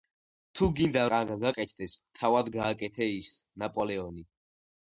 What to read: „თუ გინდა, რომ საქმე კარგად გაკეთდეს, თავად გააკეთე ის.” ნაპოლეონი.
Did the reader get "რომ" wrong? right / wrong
wrong